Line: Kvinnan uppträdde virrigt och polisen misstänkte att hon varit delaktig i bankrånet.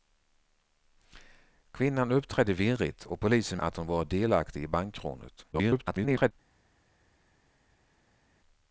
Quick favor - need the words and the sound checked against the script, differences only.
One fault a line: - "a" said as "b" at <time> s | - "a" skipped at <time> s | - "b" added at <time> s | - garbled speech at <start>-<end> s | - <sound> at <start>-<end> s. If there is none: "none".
- "misstänkte" skipped at 3.6 s
- garbled speech at 5.5-6.3 s